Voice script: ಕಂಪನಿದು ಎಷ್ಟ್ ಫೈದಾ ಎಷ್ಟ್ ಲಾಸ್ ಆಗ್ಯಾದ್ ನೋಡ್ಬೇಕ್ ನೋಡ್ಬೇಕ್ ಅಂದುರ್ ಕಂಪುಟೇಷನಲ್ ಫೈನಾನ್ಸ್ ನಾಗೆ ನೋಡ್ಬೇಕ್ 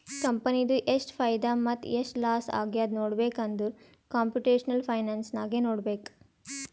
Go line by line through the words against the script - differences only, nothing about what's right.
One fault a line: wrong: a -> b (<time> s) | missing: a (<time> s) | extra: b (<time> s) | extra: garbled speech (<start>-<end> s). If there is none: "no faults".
extra: ಮತ್ತ (1.6 s)
missing: ನೋಡ್ಬೇಕ್ (3.4 s)